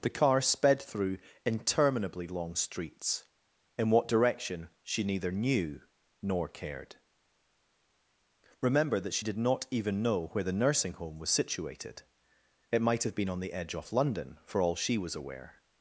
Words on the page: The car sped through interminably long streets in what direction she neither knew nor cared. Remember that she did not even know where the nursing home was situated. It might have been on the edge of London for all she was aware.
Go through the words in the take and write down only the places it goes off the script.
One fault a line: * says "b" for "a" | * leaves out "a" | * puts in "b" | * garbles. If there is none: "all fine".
* says "off" for "of"